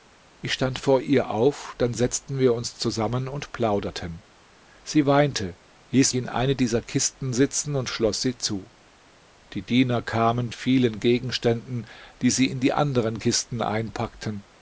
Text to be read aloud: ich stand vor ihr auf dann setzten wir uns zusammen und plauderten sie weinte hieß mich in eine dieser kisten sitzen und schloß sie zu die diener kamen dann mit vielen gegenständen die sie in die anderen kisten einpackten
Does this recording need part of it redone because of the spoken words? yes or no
yes